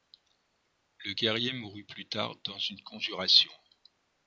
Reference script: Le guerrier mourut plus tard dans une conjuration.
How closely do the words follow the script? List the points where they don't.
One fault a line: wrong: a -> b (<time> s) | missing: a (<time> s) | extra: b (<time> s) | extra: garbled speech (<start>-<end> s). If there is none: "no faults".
no faults